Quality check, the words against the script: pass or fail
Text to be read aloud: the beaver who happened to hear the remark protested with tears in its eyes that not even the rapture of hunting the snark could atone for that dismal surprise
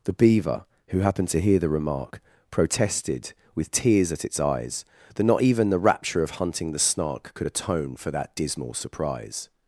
fail